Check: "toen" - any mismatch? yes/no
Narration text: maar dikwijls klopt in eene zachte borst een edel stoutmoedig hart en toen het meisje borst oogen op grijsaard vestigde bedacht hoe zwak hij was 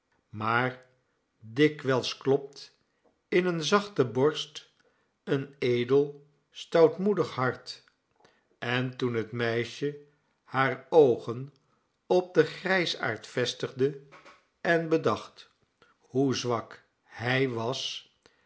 no